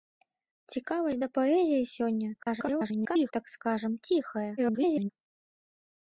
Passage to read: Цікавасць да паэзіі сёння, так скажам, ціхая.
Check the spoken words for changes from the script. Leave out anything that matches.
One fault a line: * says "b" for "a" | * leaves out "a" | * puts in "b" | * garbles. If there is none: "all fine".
* garbles
* garbles